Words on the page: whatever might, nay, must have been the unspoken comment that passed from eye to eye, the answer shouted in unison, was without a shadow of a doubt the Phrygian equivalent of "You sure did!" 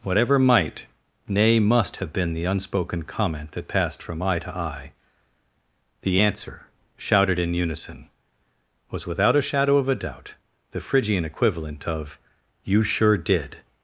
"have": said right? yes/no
yes